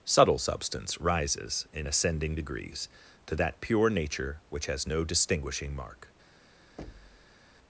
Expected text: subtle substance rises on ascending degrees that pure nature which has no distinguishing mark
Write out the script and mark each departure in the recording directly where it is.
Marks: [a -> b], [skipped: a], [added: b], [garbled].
subtle substance rises [on -> in] ascending degrees [added: to] that pure nature which has no distinguishing mark